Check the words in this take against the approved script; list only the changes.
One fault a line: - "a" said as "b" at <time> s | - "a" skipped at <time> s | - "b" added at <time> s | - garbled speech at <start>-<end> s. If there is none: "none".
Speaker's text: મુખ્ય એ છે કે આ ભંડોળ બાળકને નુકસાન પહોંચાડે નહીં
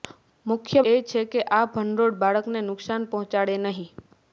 none